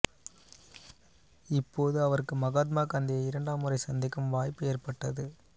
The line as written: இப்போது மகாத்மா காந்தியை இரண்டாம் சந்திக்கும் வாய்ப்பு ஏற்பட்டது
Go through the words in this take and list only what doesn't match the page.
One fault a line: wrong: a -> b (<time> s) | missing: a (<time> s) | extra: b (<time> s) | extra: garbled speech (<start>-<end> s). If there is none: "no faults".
extra: அவருக்கு (2.0 s)
extra: முறை (3.6 s)